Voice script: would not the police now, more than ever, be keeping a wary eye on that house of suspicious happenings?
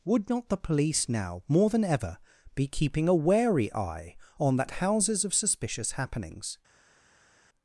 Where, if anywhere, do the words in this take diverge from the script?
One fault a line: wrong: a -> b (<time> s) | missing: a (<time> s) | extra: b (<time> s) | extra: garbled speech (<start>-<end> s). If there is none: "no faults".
wrong: house -> houses (4.7 s)